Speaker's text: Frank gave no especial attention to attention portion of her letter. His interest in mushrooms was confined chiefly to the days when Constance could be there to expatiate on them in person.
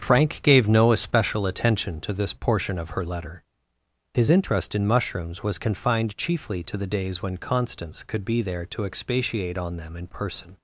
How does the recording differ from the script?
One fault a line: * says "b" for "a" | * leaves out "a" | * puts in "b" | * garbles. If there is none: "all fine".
* says "this" for "attention"